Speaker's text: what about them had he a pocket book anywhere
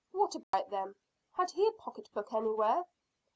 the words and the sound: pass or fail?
fail